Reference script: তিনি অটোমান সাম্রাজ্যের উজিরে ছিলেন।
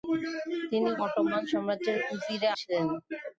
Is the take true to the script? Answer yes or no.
yes